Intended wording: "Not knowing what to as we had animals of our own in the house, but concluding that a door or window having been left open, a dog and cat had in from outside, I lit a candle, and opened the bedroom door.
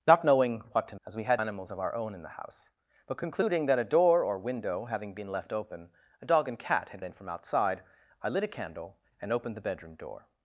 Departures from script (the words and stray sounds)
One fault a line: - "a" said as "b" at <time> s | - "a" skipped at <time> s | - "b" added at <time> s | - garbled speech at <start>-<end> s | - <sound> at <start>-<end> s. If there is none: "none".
none